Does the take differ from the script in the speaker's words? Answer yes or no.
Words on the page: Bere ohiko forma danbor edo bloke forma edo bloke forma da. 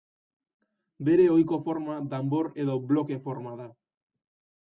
yes